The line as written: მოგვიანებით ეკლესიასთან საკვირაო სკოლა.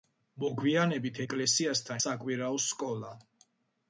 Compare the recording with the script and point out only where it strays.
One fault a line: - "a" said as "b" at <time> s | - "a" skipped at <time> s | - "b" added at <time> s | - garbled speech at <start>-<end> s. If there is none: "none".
none